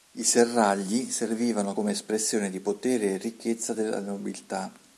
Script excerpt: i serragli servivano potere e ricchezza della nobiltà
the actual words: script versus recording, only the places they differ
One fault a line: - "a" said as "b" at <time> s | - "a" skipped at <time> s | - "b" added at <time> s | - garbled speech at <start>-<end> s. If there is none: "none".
- "come espressione di" added at 1.7 s